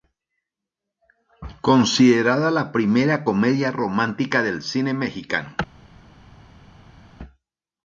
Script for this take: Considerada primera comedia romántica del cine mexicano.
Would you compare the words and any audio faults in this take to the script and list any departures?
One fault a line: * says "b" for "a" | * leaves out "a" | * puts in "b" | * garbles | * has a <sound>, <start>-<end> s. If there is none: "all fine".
* puts in "la"